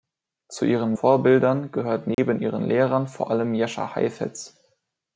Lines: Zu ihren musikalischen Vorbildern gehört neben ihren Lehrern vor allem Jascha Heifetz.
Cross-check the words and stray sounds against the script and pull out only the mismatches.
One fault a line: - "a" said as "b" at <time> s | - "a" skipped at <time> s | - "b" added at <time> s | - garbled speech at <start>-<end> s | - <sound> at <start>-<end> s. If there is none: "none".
- "musikalischen" skipped at 0.9 s
- dropout at 2.1-2.2 s